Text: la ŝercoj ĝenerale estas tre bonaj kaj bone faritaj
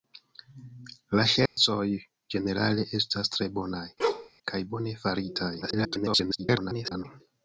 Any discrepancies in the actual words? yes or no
yes